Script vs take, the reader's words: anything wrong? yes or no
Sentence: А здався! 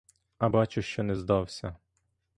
yes